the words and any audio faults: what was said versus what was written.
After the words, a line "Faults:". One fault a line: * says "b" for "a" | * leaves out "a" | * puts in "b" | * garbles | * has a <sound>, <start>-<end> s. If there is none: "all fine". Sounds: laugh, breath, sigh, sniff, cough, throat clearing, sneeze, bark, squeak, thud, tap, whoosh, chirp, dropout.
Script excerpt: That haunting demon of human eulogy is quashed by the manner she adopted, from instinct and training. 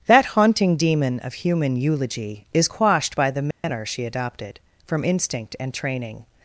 That haunting demon of human eulogy is quashed by the manner she adopted, from instinct and training.
Faults:
* has a dropout, 3.5-3.6 s